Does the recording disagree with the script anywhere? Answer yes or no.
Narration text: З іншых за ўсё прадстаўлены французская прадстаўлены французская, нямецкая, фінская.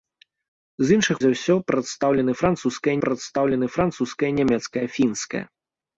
no